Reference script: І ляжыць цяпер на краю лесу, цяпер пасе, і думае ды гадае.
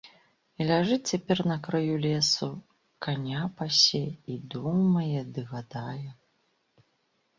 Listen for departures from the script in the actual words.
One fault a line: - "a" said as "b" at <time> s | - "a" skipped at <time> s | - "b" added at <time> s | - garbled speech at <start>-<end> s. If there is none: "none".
- "цяпер" said as "каня" at 3.1 s